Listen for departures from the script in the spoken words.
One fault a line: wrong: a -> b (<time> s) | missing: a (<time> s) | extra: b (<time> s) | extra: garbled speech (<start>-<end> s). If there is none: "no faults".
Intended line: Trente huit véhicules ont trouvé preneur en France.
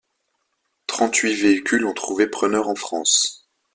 no faults